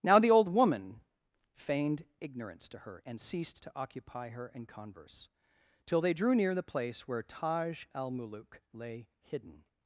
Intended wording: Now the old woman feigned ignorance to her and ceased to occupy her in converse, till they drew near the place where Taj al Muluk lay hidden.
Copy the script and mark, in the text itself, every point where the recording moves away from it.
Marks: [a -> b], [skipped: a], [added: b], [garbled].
Now the old woman feigned ignorance to her and ceased to occupy her in converse, till they drew near the place where Taj al Muluk lay hidden.